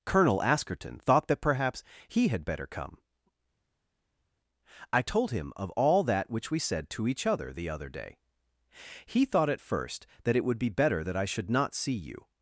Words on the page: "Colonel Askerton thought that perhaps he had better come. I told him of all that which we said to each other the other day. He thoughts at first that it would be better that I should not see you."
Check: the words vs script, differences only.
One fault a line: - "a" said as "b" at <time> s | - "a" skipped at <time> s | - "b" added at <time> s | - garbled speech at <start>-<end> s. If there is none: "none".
- "thoughts" said as "thought" at 9.2 s